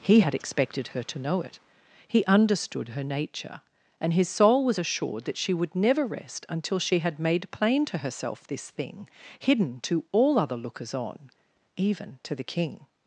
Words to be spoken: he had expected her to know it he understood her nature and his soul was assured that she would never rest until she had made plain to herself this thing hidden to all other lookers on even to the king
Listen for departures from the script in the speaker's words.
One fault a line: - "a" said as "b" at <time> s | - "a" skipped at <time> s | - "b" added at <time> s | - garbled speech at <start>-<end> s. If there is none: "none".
none